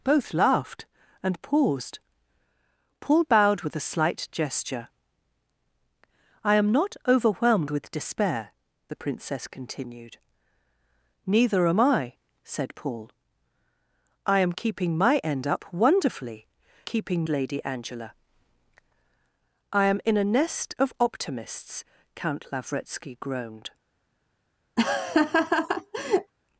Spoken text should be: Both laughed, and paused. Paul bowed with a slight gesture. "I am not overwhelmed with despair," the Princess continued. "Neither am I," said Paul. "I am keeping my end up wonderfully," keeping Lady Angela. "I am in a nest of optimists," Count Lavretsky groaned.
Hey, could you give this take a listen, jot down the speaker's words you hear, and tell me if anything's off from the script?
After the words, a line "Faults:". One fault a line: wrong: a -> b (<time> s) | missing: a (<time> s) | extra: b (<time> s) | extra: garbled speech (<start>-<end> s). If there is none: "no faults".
Both laughed, and paused. Paul bowed with a slight gesture. "I am not overwhelmed with despair," the Princess continued. "Neither am I," said Paul. "I am keeping my end up wonderfully," keeping Lady Angela. "I am in a nest of optimists," Count Lavretsky groaned.
Faults:
no faults